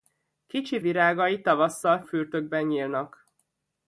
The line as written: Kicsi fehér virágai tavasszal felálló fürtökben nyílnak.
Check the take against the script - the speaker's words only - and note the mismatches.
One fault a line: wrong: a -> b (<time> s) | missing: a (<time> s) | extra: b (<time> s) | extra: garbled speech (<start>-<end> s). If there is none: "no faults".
missing: fehér (0.8 s)
missing: felálló (2.0 s)